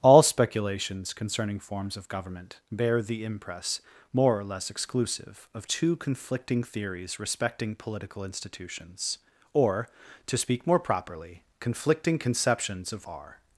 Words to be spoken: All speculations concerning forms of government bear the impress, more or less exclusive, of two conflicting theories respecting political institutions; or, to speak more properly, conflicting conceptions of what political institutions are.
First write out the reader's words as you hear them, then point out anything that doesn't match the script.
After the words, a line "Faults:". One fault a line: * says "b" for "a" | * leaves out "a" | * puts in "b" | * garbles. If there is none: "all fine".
All speculations concerning forms of government bear the impress, more or less exclusive, of two conflicting theories respecting political institutions; or, to speak more properly, conflicting conceptions of are.
Faults:
* leaves out "what political institutions"